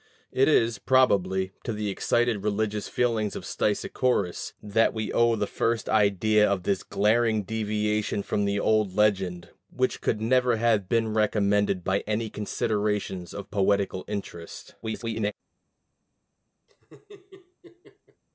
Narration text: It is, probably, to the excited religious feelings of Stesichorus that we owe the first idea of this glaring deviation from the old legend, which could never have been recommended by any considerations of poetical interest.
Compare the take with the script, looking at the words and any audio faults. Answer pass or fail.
fail